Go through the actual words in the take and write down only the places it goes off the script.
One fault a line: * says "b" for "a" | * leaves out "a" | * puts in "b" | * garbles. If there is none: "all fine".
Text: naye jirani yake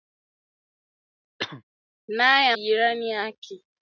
all fine